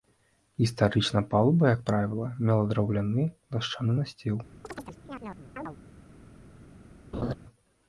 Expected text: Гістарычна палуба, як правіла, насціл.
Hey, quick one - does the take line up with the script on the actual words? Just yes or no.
no